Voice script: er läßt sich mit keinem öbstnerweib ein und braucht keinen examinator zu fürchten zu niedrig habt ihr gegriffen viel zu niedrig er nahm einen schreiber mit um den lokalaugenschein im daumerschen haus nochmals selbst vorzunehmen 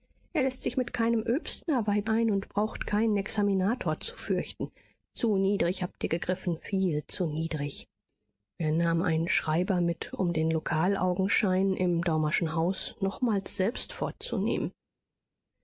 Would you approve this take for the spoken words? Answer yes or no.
yes